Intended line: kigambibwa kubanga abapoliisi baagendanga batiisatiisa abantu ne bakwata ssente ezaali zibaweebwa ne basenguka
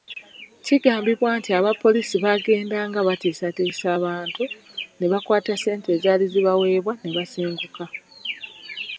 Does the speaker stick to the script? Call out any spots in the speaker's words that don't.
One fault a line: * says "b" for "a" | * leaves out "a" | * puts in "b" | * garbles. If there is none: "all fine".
* says "nti" for "kubanga"